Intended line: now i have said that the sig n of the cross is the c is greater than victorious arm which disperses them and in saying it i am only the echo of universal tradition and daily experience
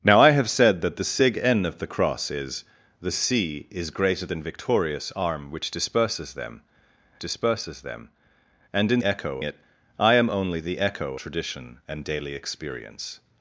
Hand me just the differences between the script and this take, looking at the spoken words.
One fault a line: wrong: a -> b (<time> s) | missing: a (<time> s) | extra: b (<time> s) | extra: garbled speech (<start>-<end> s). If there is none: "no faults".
extra: disperses them (7.2 s)
wrong: saying -> echo (9.0 s)
missing: of universal (11.2 s)